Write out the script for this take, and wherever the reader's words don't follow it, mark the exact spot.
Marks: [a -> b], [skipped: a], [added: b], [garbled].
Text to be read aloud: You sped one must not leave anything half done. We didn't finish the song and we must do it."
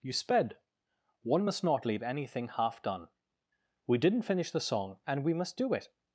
You sped one must not leave anything half done. We didn't finish the song and we must do it."